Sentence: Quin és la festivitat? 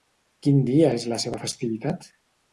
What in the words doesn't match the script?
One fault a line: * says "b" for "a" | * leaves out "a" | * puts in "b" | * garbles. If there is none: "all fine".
* puts in "dia"
* puts in "seva"